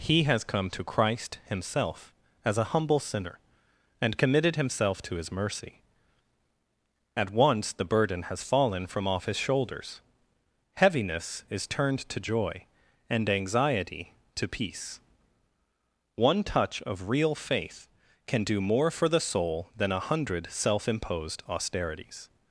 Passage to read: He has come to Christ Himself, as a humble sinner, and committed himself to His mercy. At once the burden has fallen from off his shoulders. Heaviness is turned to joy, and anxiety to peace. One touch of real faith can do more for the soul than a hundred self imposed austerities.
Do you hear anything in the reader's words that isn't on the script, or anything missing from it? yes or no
no